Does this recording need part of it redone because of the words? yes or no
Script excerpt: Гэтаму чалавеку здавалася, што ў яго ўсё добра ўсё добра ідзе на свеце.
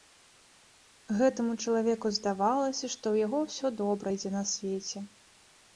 yes